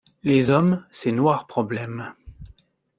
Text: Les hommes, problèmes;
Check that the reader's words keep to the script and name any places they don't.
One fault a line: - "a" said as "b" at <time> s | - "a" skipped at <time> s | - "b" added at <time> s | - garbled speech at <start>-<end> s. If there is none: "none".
- "ces noirs" added at 0.9 s